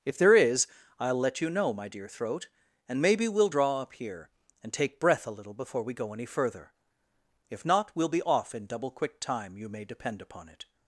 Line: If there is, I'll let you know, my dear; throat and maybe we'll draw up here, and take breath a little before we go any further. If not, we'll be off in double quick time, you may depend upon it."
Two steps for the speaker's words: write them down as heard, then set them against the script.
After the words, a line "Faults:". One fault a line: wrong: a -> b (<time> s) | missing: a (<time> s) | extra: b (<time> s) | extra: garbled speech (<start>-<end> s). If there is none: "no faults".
If there is, I'll let you know, my dear; throat and maybe we'll draw up here, and take breath a little before we go any further. If not, we'll be off in double quick time, you may depend upon it."
Faults:
no faults